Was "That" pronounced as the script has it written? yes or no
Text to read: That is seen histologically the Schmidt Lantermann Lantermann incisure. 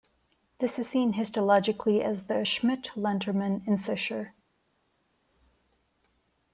no